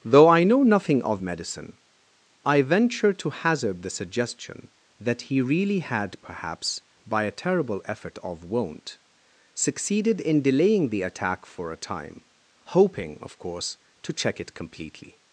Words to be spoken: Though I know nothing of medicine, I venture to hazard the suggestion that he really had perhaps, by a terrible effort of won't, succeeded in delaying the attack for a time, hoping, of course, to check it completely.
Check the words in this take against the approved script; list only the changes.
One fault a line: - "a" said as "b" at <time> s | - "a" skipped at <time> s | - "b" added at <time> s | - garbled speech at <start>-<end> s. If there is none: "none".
none